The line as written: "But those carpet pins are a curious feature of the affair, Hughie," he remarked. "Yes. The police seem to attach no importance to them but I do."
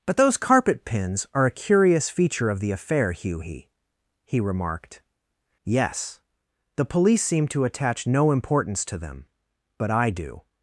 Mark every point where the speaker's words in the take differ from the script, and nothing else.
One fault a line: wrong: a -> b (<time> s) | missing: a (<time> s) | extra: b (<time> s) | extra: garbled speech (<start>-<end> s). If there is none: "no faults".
no faults